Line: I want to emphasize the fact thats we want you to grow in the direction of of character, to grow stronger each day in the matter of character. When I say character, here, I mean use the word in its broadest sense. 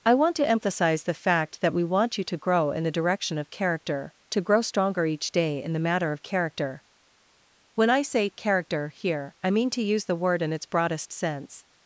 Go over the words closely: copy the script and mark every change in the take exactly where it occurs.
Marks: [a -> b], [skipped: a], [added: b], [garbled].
I want to emphasize the fact [thats -> that] we want you to grow in the direction of [skipped: of] character, to grow stronger each day in the matter of character. When I say character, here, I mean [added: to] use the word in its broadest sense.